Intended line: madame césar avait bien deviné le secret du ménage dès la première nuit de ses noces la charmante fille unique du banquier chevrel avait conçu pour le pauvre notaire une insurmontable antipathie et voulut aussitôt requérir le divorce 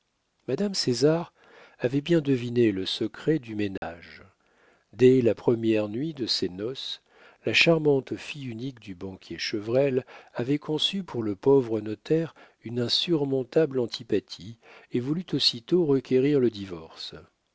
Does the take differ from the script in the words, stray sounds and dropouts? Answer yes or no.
yes